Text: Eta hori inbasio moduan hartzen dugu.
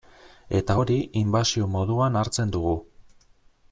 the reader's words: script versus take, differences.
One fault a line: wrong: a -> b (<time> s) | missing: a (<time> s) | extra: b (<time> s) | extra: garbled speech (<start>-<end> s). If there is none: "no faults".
no faults